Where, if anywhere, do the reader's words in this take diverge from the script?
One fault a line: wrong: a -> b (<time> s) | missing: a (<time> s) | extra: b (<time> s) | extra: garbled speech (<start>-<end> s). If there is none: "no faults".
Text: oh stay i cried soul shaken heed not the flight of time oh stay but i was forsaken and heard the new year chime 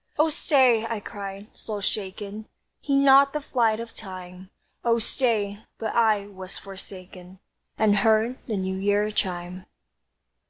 no faults